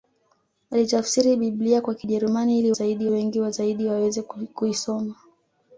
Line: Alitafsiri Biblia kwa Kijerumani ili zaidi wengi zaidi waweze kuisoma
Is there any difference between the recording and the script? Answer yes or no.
no